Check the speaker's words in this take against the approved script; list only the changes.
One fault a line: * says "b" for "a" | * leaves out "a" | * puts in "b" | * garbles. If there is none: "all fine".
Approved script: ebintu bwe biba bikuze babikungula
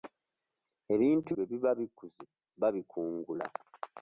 all fine